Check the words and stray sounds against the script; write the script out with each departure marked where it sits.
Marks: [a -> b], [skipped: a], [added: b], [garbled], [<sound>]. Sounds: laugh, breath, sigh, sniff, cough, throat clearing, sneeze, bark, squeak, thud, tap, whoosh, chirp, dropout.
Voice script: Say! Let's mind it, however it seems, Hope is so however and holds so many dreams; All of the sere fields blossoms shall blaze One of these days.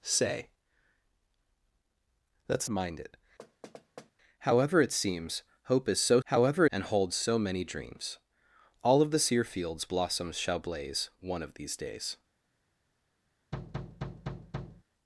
Say! Let's mind it, [thud] however it seems, Hope is so however and holds so many dreams; All of the sere fields blossoms shall blaze One of these days. [thud]